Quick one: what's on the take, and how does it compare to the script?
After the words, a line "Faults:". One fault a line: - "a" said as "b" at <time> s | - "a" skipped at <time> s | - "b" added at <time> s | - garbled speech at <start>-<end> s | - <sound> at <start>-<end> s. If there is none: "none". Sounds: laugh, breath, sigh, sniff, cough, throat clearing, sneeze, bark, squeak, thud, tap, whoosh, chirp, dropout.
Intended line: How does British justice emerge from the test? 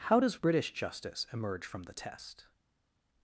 How does British justice emerge from the test?
Faults:
none